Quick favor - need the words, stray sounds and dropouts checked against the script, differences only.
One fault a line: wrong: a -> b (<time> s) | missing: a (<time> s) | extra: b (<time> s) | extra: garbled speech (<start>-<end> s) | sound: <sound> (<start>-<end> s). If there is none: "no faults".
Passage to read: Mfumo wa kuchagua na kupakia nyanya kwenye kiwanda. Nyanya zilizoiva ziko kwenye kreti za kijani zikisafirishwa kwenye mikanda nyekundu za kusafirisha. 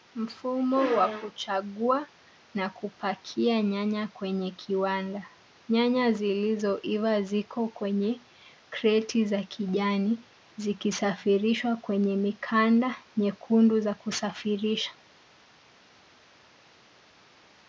no faults